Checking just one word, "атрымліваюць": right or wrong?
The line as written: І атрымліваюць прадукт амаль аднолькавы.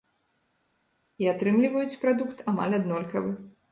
right